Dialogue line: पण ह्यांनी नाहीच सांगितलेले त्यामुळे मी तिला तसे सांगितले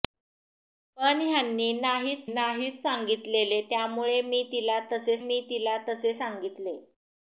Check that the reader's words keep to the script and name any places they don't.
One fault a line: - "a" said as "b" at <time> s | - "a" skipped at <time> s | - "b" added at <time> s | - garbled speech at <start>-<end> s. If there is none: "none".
- "नाहीच" added at 2.3 s
- "मी तिला तसे" added at 5.2 s